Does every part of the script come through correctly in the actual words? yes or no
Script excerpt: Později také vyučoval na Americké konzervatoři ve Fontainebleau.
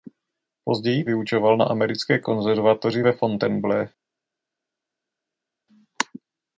no